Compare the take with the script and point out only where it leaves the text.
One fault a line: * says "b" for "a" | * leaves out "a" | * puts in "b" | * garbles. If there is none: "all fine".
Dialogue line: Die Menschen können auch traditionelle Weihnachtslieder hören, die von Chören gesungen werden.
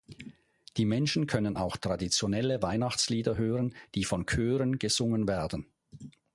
all fine